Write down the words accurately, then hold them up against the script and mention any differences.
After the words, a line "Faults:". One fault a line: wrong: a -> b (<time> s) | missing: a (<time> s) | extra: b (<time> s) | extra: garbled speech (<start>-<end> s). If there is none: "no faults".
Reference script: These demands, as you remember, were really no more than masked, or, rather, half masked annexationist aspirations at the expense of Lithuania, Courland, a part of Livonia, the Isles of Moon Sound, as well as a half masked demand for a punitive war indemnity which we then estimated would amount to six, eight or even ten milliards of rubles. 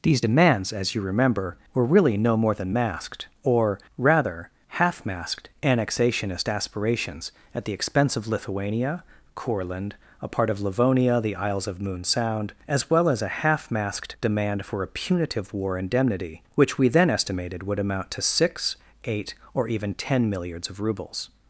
These demands, as you remember, were really no more than masked, or, rather, half masked annexationist aspirations at the expense of Lithuania, Courland, a part of Livonia, the Isles of Moon Sound, as well as a half masked demand for a punitive war indemnity which we then estimated would amount to six, eight or even ten milliards of rubles.
Faults:
no faults